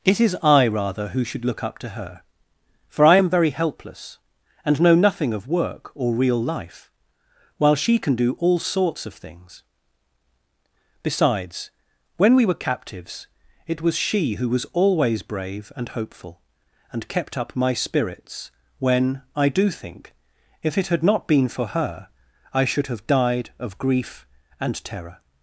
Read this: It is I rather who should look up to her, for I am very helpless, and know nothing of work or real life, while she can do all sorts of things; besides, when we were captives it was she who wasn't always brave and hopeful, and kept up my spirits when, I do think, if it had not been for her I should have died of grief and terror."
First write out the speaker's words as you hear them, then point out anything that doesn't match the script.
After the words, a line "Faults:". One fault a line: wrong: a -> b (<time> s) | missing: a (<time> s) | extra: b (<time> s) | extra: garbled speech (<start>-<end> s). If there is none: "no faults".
It is I rather who should look up to her, for I am very helpless, and know nothing of work or real life, while she can do all sorts of things; besides, when we were captives it was she who was always brave and hopeful, and kept up my spirits when, I do think, if it had not been for her I should have died of grief and terror."
Faults:
wrong: wasn't -> was (14.5 s)